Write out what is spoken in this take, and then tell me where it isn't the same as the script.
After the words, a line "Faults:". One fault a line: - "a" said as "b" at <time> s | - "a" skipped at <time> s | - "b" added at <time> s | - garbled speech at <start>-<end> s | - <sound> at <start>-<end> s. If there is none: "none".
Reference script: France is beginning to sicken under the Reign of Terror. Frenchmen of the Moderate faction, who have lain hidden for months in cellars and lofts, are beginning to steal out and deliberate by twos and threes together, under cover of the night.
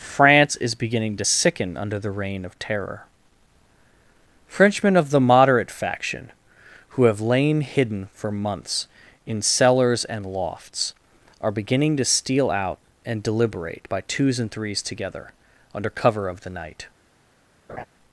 France is beginning to sicken under the Reign of Terror. Frenchmen of the Moderate faction, who have lain hidden for months in cellars and lofts, are beginning to steal out and deliberate by twos and threes together, under cover of the night.
Faults:
- laugh at 17.7-17.9 s